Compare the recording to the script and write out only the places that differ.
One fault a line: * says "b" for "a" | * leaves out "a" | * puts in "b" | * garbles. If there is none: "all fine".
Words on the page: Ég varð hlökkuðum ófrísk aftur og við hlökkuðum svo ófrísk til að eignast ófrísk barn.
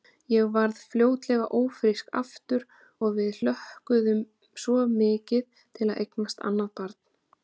* says "fljótlega" for "hlökkuðum"
* says "mikið" for "ófrísk"
* says "annað" for "ófrísk"